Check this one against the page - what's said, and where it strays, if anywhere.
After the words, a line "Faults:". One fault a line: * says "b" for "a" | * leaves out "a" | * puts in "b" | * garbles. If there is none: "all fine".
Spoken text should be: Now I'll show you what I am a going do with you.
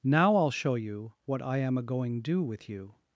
Now I'll show you what I am a going do with you.
Faults:
all fine